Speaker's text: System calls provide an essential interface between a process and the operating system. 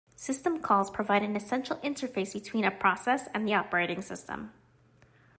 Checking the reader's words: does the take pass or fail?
pass